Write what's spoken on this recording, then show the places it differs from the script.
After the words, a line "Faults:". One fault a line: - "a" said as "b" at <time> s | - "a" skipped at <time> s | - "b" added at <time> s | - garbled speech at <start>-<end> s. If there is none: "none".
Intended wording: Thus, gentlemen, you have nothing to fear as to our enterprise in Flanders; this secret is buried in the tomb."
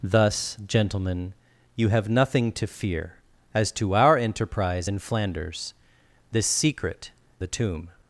Thus, gentlemen, you have nothing to fear as to our enterprise in Flanders; this secret the tomb."
Faults:
- "is buried in" skipped at 7.1 s